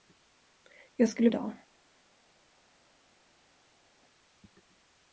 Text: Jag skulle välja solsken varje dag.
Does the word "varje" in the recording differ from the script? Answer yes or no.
yes